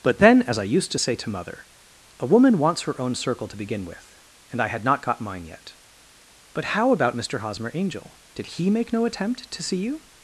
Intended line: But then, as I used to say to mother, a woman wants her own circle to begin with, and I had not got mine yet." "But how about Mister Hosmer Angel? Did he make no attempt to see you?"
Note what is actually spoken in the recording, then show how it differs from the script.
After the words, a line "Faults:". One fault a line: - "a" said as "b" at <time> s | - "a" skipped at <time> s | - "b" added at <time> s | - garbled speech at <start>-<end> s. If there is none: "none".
But then, as I used to say to mother, a woman wants her own circle to begin with, and I had not got mine yet." "But how about Mister Hosmer Angel? Did he make no attempt to see you?"
Faults:
none